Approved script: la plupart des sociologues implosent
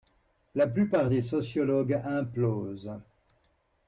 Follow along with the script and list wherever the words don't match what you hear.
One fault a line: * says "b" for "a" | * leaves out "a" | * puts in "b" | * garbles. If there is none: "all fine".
all fine